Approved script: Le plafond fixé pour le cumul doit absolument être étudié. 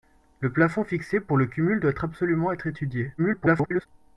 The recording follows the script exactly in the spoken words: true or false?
false